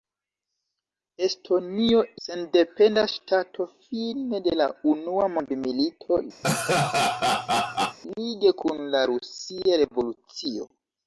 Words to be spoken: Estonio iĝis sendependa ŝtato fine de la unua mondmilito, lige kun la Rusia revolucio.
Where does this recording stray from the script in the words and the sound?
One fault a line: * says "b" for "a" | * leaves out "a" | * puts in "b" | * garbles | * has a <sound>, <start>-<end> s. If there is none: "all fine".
* leaves out "iĝis"
* has a laugh, 6.4-8.0 s